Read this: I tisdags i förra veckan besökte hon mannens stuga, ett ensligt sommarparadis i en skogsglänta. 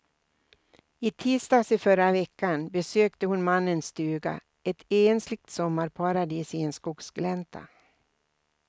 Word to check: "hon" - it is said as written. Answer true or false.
true